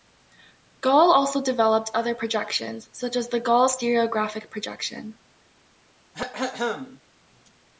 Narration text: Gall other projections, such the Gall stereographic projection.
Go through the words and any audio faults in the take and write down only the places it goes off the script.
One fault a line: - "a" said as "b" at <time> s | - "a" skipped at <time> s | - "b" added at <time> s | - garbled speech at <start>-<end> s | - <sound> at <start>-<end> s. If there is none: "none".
- "also developed" added at 1.1 s
- "as" added at 3.2 s
- throat clearing at 6.1-7.0 s